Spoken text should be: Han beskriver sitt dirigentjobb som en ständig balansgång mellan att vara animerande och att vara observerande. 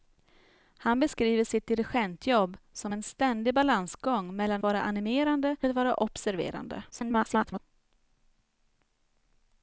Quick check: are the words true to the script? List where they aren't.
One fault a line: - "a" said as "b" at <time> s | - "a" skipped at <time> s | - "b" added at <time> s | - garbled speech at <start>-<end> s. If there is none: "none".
- "att" skipped at 4.6 s
- "och" skipped at 5.6 s
- garbled speech at 6.9-7.6 s